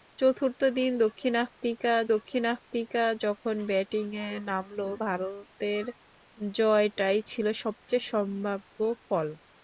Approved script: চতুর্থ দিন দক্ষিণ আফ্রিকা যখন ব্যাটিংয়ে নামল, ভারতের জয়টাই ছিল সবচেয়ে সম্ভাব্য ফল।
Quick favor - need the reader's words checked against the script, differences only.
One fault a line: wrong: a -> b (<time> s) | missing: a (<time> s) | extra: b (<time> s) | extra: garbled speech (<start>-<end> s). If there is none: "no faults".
extra: দক্ষিণ আফ্রিকা (2.1 s)